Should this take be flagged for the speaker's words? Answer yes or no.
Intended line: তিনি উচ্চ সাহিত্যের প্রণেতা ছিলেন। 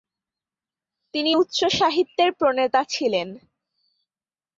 no